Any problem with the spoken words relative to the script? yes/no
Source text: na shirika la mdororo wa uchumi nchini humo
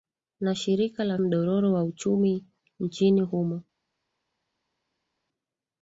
no